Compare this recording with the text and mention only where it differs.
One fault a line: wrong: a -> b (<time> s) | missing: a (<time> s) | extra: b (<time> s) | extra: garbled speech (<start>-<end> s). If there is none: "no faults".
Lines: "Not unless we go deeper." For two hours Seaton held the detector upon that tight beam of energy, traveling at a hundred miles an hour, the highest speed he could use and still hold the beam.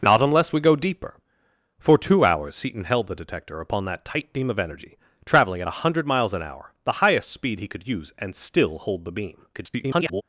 extra: garbled speech (9.5-10.2 s)